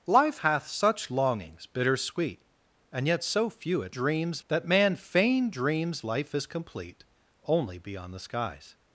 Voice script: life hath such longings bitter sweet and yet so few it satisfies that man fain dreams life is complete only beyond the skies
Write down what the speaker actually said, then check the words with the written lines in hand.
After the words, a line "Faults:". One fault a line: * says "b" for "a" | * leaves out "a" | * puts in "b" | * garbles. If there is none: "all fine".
life hath such longings bitter sweet and yet so few it dreams that man fain dreams life is complete only beyond the skies
Faults:
* says "dreams" for "satisfies"